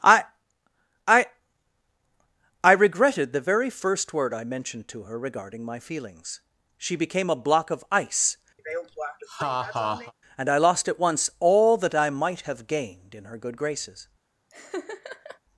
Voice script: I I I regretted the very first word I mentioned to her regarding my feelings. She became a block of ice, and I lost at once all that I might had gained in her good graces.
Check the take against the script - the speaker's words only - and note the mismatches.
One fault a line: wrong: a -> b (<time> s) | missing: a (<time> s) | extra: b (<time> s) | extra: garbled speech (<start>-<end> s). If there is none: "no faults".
wrong: had -> have (12.4 s)